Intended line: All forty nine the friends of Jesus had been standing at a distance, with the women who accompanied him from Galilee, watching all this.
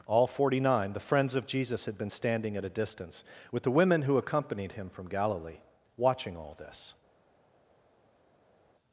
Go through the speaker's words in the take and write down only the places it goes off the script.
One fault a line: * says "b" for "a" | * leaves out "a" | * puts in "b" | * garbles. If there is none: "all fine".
all fine